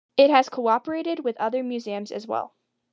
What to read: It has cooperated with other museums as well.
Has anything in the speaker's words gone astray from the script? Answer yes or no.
no